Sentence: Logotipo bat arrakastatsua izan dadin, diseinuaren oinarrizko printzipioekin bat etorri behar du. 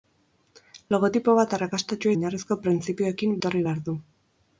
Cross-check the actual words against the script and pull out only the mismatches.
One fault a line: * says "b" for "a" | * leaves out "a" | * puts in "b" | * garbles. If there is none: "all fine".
* leaves out "izan dadin diseinuaren"
* leaves out "bat"